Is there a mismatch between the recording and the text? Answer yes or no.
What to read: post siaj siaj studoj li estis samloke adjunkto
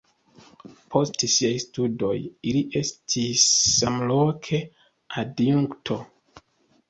yes